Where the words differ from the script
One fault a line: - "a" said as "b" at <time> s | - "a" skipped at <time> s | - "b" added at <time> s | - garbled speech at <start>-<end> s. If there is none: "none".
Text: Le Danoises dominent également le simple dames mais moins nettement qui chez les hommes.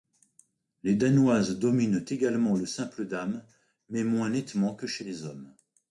- "Le" said as "Les" at 0.8 s
- "qui" said as "que" at 4.7 s